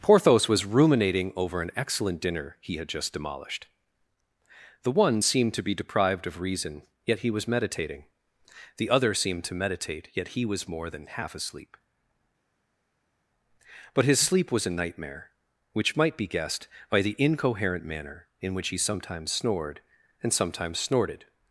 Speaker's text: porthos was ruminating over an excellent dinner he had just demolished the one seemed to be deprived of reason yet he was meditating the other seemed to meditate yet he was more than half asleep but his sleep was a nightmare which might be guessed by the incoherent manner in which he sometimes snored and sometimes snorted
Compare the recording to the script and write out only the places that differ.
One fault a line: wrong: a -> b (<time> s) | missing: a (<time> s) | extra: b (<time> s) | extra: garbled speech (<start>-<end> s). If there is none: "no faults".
no faults